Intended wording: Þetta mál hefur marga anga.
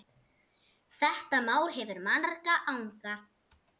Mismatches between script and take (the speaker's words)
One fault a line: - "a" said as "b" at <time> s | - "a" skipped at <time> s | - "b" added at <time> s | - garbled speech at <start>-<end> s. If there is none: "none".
none